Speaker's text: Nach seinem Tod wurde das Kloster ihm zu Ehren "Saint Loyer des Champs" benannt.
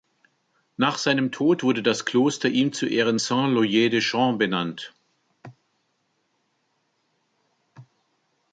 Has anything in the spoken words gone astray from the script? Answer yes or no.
no